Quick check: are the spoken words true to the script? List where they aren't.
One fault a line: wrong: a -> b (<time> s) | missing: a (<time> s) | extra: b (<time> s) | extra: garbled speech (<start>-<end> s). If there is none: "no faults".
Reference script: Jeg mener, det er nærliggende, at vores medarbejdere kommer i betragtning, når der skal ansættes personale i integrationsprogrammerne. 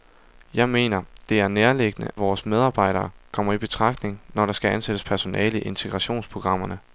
missing: at (2.1 s)